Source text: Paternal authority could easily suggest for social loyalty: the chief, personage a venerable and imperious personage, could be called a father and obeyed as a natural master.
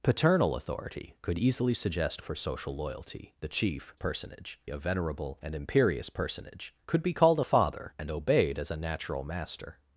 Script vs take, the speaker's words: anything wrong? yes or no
no